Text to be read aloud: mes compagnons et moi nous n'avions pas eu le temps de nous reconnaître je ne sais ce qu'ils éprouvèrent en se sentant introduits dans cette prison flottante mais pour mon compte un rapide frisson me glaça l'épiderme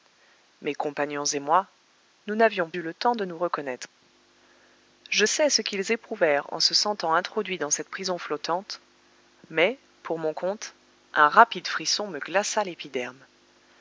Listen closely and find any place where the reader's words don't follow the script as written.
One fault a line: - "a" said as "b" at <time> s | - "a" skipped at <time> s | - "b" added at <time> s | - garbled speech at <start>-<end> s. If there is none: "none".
- "pas" skipped at 2.7 s
- "ne" skipped at 5.2 s